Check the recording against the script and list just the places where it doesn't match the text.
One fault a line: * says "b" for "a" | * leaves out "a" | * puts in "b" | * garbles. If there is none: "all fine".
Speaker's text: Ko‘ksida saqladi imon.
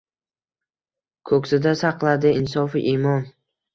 * puts in "insofu"